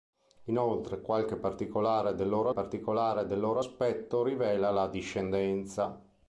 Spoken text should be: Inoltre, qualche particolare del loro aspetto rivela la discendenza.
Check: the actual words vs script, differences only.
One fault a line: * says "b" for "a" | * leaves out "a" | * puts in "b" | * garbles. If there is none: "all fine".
* puts in "particolare del loro"